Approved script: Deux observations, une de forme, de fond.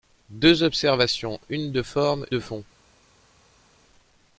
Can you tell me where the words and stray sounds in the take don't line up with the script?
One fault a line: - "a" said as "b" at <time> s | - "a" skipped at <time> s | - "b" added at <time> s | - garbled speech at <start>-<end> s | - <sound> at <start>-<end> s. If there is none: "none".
none